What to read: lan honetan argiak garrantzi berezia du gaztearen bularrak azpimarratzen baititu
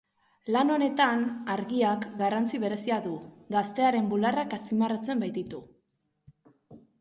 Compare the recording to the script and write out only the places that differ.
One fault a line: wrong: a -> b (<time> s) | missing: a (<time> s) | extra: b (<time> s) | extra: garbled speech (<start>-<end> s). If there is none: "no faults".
no faults